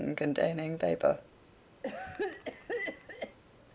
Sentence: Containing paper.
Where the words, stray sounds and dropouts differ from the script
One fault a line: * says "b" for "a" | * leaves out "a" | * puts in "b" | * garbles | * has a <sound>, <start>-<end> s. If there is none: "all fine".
* has a cough, 1.8-3.4 s